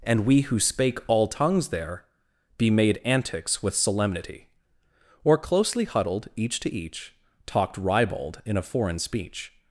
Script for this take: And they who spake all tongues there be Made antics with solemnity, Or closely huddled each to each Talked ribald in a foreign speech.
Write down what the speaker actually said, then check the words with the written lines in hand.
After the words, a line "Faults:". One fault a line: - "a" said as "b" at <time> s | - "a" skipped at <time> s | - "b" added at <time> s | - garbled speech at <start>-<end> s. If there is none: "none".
And we who spake all tongues there be Made antics with solemnity, Or closely huddled each to each Talked ribald in a foreign speech.
Faults:
- "they" said as "we" at 0.2 s